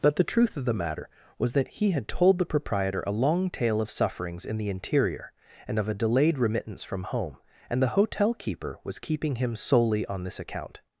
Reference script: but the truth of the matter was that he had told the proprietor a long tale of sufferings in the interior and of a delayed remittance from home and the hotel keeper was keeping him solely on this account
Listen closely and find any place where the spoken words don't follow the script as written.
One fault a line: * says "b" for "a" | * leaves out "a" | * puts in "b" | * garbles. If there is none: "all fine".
all fine